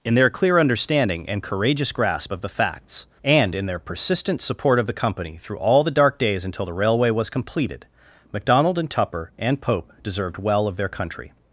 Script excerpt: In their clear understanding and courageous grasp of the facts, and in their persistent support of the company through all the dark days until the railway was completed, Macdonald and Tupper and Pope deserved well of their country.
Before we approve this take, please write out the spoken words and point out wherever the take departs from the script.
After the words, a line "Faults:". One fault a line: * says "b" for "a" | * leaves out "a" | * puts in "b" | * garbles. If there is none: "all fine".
In their clear understanding and courageous grasp of the facts, and in their persistent support of the company through all the dark days until the railway was completed, Macdonald and Tupper and Pope deserved well of their country.
Faults:
all fine